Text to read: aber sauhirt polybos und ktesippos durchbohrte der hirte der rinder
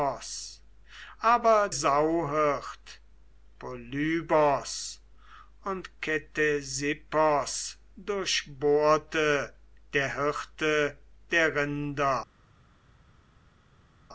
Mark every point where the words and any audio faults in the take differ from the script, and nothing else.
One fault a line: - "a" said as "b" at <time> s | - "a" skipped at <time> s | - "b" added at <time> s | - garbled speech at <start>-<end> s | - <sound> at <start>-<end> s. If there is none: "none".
none